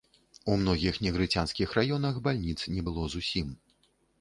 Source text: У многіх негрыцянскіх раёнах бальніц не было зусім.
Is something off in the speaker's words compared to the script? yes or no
no